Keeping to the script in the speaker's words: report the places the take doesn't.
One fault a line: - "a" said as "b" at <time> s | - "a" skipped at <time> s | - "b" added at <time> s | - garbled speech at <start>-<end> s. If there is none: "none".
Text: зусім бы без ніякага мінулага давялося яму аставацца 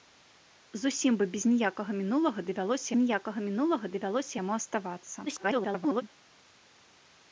- "ніякага мінулага давялося" added at 3.0 s
- garbled speech at 5.3-6.0 s